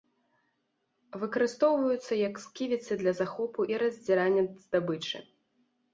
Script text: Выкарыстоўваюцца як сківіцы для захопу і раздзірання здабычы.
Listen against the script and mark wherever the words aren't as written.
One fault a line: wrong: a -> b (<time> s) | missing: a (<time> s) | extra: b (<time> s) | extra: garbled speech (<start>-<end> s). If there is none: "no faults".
no faults